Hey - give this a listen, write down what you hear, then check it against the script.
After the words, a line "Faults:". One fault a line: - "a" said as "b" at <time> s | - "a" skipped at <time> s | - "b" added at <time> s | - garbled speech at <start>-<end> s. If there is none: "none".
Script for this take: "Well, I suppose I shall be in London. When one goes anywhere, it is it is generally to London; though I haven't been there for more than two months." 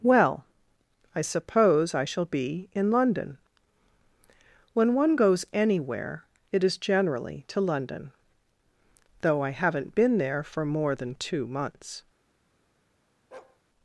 "Well, I suppose I shall be in London. When one goes anywhere, it is generally to London; though I haven't been there for more than two months."
Faults:
- "it is" skipped at 6.8 s